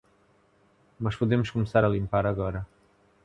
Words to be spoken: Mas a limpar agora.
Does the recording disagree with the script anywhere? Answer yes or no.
yes